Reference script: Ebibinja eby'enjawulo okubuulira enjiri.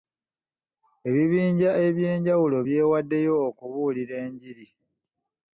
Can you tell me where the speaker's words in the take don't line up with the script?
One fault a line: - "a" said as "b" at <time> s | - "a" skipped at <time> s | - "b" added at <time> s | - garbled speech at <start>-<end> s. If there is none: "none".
- "byewaddeyo" added at 2.6 s